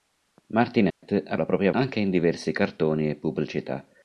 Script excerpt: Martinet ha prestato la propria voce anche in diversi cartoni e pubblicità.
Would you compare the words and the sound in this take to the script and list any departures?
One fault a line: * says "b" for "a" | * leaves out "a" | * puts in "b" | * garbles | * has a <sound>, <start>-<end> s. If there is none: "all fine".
* has a dropout, 0.9-1.0 s
* leaves out "prestato"
* leaves out "voce"